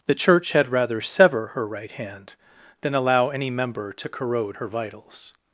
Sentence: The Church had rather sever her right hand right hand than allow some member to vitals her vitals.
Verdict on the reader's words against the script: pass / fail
fail